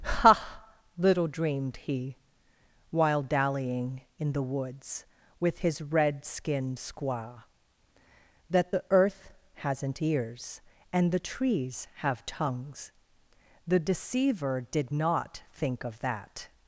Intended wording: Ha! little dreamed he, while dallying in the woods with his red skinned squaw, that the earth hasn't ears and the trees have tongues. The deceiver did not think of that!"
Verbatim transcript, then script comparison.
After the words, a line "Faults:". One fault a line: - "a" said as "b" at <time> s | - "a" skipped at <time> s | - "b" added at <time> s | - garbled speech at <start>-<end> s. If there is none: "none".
Ha! little dreamed he, while dallying in the woods with his red skinned squaw, that the earth hasn't ears and the trees have tongues. The deceiver did not think of that!"
Faults:
none